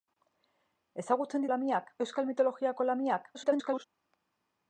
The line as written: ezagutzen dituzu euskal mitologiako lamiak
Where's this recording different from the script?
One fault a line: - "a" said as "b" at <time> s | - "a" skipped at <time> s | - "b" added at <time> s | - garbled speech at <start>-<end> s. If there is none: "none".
- "dituzu" said as "lamiak" at 1.5 s
- garbled speech at 3.3-3.8 s